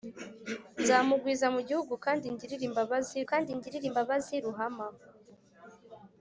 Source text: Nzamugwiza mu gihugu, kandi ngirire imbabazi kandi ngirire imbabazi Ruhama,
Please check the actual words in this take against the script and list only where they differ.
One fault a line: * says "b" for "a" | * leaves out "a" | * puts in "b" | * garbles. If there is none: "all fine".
all fine